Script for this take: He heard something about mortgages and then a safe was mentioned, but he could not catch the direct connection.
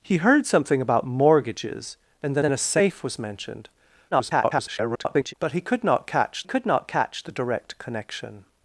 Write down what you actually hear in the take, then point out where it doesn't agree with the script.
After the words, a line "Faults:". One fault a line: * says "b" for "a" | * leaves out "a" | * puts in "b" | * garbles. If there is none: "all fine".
He heard something about mortgages and then then a safe was mentioned, [garbled] but he could not catch could not catch the direct connection.
Faults:
* puts in "then"
* garbles
* puts in "could not catch"